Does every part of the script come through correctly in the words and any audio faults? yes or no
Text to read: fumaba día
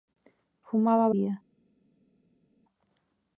yes